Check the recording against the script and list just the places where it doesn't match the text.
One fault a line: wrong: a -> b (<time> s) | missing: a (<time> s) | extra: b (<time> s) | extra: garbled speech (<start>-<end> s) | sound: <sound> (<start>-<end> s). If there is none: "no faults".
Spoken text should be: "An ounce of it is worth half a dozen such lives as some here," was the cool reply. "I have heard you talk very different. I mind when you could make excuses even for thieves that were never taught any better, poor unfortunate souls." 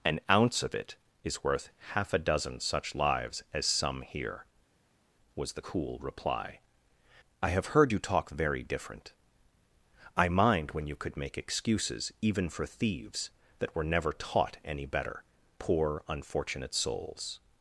no faults